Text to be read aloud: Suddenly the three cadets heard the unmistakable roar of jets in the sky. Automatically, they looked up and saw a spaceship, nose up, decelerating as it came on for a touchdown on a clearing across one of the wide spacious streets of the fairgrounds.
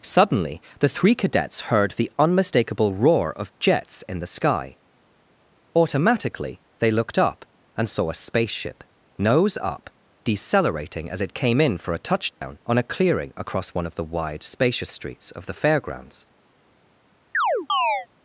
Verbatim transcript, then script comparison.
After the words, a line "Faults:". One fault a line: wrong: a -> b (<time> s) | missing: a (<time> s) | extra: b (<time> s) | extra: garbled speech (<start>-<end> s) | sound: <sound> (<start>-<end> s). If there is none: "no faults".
Suddenly the three cadets heard the unmistakable roar of jets in the sky. Automatically, they looked up and saw a spaceship, nose up, decelerating as it came in for a touchdown on a clearing across one of the wide spacious streets of the fairgrounds.
Faults:
wrong: on -> in (11.6 s)
sound: dropout (12.3-12.4 s)
sound: chirp (17.3-18.1 s)